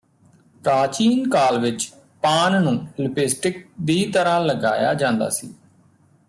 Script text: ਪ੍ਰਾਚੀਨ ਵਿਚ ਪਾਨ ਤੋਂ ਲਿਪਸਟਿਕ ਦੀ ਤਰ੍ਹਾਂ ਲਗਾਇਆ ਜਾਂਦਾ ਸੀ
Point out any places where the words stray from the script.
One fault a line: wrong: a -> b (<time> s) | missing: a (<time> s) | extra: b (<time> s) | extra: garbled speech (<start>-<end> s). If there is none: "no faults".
extra: ਕਾਲ (1.3 s)
wrong: ਤੋਂ -> ਨੂੰ (2.6 s)